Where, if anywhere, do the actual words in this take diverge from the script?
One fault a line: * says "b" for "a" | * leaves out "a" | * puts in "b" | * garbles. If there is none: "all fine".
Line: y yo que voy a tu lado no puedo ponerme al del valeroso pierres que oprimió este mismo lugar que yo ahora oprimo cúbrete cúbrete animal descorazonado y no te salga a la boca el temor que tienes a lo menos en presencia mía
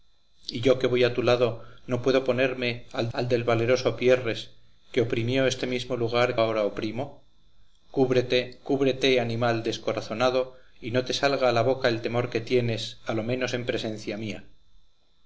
* puts in "al"
* leaves out "que yo"